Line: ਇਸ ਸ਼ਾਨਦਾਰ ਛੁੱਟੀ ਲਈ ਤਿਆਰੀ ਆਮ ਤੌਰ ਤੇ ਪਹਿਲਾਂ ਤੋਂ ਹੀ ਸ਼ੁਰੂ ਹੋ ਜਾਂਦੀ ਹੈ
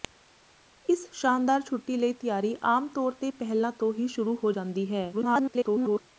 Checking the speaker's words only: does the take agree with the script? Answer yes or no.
no